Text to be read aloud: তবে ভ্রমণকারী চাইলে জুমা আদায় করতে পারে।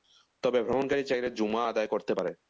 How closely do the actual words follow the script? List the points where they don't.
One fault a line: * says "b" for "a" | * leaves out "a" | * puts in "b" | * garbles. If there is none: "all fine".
all fine